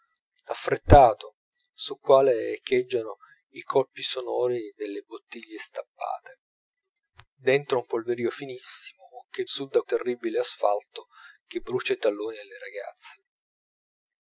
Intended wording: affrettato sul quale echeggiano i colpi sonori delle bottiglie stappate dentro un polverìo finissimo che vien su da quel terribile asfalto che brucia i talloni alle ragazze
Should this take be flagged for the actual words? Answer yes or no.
yes